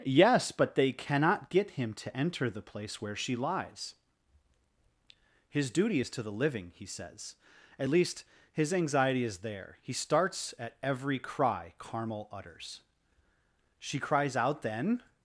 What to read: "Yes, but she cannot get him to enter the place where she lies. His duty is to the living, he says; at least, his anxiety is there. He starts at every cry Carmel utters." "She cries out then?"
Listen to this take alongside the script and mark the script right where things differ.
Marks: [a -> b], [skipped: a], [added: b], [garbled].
"Yes, but [she -> they] cannot get him to enter the place where she lies. His duty is to the living, he says; at least, his anxiety is there. He starts at every cry Carmel utters." "She cries out then?"